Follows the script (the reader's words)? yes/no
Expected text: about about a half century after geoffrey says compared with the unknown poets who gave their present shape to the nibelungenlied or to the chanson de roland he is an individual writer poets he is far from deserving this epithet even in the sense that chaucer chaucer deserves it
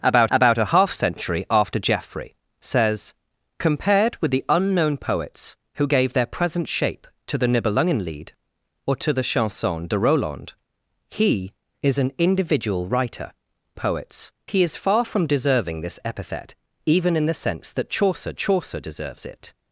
yes